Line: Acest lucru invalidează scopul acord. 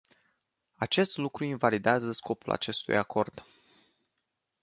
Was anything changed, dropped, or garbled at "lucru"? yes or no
no